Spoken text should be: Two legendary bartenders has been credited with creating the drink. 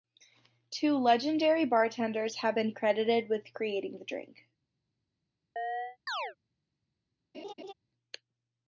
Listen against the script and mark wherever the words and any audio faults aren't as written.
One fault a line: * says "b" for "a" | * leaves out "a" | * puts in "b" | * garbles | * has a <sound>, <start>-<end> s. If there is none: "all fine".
* says "have" for "has"
* has a chirp, 5.6-6.4 s
* has a laugh, 7.3-7.7 s